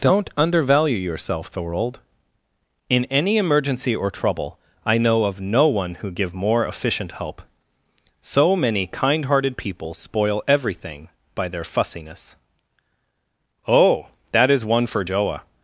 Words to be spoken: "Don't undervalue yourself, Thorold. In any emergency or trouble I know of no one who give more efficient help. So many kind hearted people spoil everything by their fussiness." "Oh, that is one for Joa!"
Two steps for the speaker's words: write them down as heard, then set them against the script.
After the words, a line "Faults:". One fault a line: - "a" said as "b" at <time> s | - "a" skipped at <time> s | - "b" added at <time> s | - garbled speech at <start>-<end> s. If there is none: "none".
"Don't undervalue yourself, Thorold. In any emergency or trouble I know of no one who give more efficient help. So many kind hearted people spoil everything by their fussiness." "Oh, that is one for Joa!"
Faults:
none